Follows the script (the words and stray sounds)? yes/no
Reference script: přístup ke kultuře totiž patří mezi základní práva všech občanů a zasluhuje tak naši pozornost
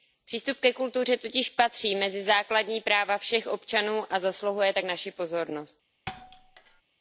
no